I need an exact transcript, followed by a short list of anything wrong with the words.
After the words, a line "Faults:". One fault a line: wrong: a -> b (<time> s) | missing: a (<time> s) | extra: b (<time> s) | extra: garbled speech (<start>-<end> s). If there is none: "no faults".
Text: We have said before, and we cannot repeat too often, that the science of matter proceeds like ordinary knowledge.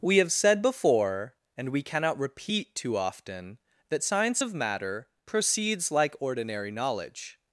We have said before, and we cannot repeat too often, that science of matter proceeds like ordinary knowledge.
Faults:
missing: the (4.0 s)